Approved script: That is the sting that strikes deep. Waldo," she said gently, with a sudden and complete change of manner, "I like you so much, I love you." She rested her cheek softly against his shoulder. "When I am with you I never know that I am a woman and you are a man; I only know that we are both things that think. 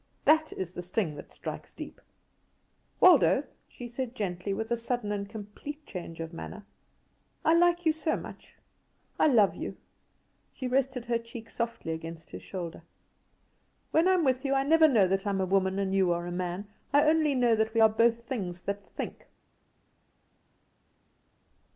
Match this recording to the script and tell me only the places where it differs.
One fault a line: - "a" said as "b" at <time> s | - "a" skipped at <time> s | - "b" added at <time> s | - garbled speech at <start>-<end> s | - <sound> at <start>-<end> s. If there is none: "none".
none